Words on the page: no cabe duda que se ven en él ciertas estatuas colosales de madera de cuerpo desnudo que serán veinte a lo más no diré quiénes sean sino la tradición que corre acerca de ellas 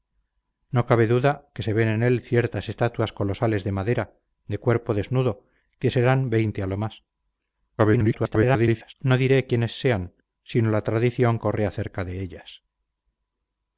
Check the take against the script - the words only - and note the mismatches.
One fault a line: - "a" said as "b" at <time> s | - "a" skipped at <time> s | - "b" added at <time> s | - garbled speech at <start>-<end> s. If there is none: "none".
- garbled speech at 7.8-8.9 s
- "que" skipped at 11.4 s